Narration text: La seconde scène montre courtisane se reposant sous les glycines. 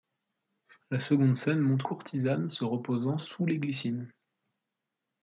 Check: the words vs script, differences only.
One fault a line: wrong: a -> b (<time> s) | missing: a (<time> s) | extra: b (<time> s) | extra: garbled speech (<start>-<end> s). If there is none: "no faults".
no faults